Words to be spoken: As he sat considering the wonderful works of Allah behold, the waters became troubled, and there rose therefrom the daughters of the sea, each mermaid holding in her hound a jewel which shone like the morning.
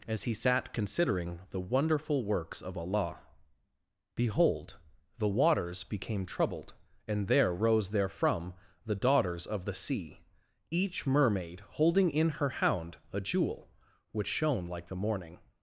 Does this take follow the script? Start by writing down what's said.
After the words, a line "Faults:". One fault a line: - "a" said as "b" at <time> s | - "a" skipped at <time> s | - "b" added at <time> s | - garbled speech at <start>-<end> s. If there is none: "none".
As he sat considering the wonderful works of Allah behold, the waters became troubled, and there rose therefrom the daughters of the sea, each mermaid holding in her hound a jewel which shone like the morning.
Faults:
none